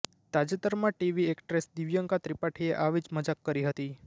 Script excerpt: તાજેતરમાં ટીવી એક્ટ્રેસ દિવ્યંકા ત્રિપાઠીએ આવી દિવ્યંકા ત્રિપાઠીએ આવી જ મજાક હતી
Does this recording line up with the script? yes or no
no